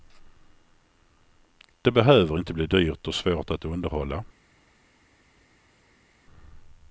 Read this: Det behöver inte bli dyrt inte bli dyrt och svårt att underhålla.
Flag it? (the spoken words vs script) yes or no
yes